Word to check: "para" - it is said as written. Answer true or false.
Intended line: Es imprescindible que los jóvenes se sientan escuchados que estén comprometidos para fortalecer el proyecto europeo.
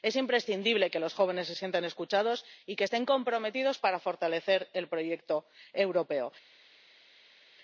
true